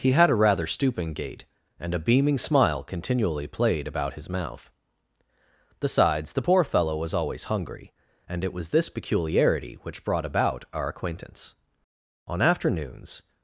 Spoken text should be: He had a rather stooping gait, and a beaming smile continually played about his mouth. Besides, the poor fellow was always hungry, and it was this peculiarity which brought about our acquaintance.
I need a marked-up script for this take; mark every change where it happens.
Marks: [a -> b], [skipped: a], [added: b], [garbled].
He had a rather stooping gait, and a beaming smile continually played about his mouth. Besides, the poor fellow was always hungry, and it was this peculiarity which brought about our acquaintance. [added: On afternoons]